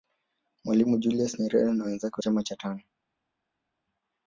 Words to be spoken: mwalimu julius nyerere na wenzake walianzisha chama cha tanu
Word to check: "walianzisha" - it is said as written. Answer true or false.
false